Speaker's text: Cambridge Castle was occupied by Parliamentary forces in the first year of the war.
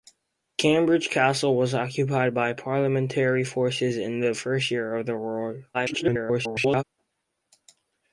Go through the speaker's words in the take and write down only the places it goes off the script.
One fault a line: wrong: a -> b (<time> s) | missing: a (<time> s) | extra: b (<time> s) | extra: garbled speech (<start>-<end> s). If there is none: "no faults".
extra: garbled speech (5.7-6.8 s)